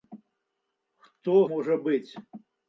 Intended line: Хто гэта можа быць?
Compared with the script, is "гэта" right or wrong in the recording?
wrong